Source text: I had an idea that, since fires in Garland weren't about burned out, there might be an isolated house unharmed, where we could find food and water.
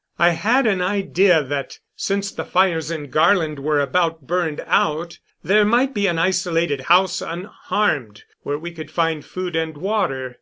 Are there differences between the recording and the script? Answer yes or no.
yes